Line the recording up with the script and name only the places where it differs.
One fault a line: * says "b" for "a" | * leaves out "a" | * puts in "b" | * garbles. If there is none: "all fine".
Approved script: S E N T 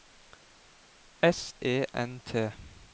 all fine